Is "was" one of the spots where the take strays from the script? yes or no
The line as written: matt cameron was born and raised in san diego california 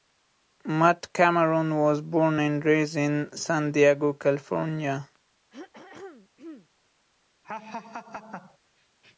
no